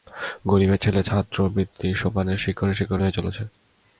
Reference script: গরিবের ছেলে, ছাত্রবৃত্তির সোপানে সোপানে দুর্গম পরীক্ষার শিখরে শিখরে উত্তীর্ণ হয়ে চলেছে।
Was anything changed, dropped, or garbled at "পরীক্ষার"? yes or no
yes